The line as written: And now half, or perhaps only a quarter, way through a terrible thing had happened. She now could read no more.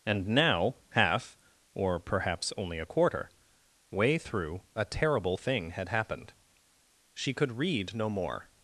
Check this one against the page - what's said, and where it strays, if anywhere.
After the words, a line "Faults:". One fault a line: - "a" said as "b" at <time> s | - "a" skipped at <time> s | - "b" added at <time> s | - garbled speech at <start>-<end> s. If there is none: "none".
And now half, or perhaps only a quarter, way through a terrible thing had happened. She could read no more.
Faults:
- "now" skipped at 7.3 s